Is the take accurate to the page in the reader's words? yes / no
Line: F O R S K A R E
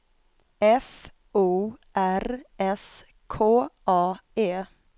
no